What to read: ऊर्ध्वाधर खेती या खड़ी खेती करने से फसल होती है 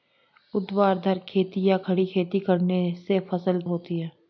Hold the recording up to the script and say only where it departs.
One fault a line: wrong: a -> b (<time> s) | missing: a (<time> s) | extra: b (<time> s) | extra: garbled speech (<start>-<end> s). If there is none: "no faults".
no faults